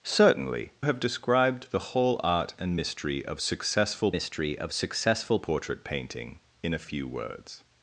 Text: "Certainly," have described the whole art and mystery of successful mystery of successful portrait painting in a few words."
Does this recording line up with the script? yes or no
yes